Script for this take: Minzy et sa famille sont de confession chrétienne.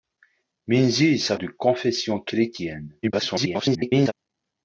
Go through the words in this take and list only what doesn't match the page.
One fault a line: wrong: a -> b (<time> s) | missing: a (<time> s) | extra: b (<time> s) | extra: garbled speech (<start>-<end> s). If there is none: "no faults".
missing: famille sont (1.4 s)
extra: garbled speech (3.0-4.1 s)